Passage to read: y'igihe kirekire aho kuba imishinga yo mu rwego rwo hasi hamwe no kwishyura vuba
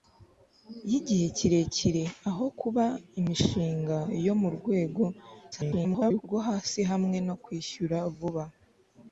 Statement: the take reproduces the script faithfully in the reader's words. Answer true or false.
false